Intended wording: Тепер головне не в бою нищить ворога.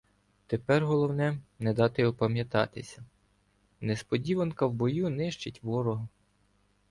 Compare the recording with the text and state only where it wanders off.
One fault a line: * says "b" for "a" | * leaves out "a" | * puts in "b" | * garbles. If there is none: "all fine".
* puts in "дати опам'ятатися несподіванка"